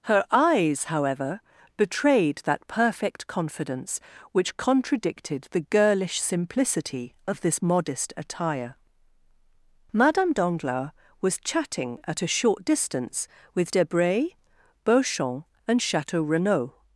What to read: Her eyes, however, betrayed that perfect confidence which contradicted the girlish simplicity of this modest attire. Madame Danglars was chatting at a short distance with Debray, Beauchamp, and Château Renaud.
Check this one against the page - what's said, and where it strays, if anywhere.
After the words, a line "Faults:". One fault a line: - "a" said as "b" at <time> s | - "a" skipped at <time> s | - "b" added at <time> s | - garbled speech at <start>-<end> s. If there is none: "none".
Her eyes, however, betrayed that perfect confidence which contradicted the girlish simplicity of this modest attire. Madame Danglars was chatting at a short distance with Debray, Beauchamp, and Château Renaud.
Faults:
none